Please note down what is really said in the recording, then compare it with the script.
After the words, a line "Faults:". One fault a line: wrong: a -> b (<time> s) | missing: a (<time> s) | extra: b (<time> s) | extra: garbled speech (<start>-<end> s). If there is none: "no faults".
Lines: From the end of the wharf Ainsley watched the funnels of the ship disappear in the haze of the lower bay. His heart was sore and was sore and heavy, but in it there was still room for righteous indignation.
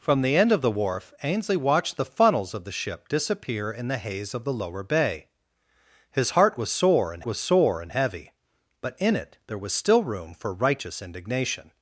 From the end of the wharf Ainsley watched the funnels of the ship disappear in the haze of the lower bay. His heart was sore and was sore and heavy, but in it there was still room for righteous indignation.
Faults:
no faults